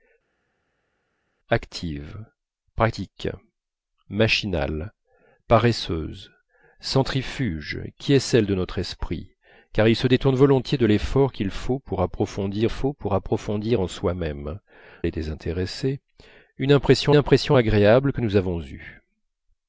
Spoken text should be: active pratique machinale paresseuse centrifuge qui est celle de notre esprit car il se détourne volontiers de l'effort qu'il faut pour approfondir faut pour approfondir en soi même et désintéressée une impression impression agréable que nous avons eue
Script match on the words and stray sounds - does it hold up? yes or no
yes